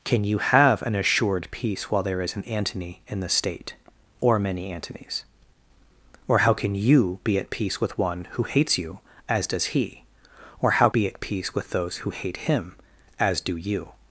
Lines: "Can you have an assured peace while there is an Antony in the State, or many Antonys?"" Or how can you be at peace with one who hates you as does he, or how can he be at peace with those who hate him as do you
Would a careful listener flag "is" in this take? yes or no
no